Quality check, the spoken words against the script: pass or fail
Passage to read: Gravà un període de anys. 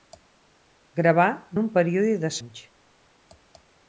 pass